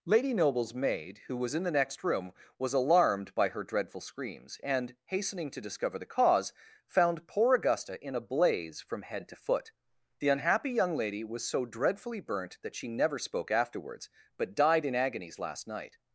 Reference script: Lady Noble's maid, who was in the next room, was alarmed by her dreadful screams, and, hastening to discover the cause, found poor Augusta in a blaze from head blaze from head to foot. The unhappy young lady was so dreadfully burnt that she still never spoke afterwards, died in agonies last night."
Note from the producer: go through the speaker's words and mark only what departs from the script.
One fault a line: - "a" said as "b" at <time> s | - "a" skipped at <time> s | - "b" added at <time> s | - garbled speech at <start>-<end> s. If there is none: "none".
- "blaze from head" skipped at 9.3 s
- "still" skipped at 12.9 s
- "but" added at 14.4 s